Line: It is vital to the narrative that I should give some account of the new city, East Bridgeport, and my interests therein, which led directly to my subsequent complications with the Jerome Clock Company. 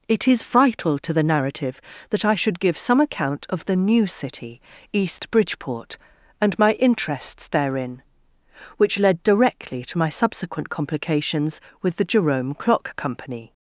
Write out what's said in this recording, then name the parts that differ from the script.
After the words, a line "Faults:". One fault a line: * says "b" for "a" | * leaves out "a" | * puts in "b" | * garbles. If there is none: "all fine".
It is vital to the narrative that I should give some account of the new city, East Bridgeport, and my interests therein, which led directly to my subsequent complications with the Jerome Clock Company.
Faults:
all fine